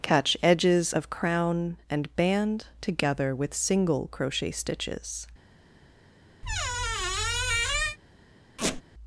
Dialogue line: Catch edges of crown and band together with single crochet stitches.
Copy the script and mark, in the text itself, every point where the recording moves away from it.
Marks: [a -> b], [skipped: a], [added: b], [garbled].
Catch edges of crown and band together with single crochet stitches.